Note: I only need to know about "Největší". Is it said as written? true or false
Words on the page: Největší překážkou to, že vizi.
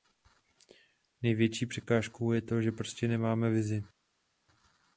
true